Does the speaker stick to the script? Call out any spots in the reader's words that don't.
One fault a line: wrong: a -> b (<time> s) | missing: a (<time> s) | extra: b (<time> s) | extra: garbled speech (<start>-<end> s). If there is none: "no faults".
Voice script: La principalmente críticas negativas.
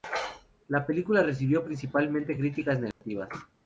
extra: película recibió (0.8 s)